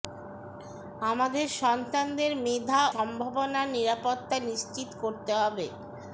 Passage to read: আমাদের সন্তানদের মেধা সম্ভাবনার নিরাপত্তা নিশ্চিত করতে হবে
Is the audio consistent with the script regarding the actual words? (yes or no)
yes